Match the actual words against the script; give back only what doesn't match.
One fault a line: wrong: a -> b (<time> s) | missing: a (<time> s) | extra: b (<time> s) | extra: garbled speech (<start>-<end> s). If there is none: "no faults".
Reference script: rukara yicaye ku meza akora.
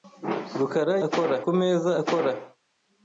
wrong: yicaye -> akora (1.1 s)